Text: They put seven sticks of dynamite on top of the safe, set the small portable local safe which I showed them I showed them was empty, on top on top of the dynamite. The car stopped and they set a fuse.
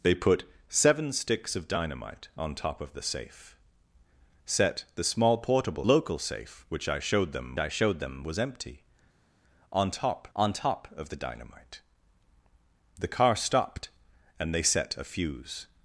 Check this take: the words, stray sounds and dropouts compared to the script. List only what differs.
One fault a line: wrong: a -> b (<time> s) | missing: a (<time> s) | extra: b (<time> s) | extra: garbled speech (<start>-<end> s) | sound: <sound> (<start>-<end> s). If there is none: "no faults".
no faults